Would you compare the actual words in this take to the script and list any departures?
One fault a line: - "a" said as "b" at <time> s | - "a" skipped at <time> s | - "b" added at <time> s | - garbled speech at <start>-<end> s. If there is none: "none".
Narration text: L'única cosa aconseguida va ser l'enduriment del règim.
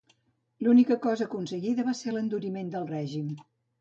none